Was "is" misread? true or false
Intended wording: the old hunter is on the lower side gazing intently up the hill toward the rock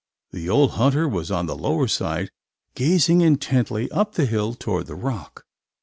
true